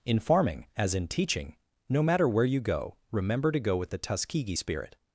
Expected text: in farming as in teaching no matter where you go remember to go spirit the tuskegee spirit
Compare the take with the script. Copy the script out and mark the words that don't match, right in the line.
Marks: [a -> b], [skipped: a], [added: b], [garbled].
in farming as in teaching no matter where you go remember to go [spirit -> with] the tuskegee spirit